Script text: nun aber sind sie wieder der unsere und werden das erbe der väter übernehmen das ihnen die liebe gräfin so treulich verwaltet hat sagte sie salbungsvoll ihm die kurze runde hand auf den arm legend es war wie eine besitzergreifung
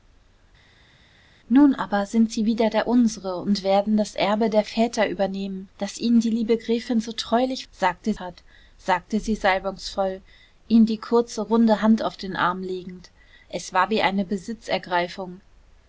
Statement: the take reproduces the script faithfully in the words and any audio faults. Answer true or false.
false